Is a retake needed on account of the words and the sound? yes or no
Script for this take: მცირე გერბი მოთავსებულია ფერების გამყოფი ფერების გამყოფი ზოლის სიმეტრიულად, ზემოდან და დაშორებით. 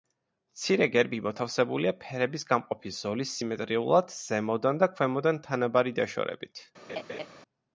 yes